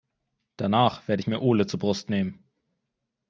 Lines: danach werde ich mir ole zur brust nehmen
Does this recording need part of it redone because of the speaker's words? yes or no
no